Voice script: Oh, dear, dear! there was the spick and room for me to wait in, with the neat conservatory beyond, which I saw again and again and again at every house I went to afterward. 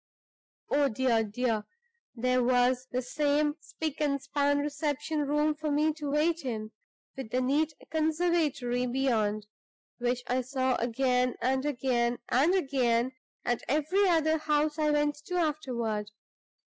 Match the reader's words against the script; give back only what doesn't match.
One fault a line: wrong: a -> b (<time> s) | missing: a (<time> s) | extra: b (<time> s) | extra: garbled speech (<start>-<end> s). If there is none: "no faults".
extra: same (3.0 s)
extra: span reception (4.2 s)
extra: other (14.1 s)